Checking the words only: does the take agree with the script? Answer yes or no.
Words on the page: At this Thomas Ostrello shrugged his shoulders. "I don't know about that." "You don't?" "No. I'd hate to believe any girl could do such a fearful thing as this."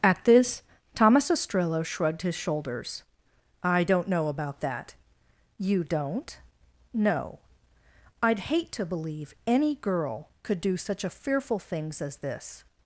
no